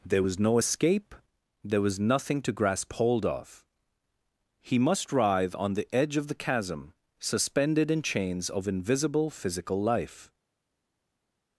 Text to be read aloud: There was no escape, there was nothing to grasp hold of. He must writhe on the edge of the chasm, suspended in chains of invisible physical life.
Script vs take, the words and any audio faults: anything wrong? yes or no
no